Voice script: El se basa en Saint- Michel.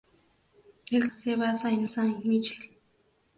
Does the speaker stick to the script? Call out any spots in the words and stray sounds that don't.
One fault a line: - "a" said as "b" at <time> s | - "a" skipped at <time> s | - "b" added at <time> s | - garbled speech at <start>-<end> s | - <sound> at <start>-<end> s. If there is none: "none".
none